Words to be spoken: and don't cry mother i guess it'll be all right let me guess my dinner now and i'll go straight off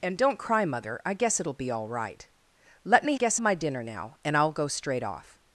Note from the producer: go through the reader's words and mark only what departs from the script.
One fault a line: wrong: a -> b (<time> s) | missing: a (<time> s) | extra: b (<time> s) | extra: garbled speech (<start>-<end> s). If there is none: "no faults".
no faults